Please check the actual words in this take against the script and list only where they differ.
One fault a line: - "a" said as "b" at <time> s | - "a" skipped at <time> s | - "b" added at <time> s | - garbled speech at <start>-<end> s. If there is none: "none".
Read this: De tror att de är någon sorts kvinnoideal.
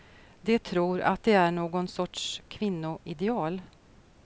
none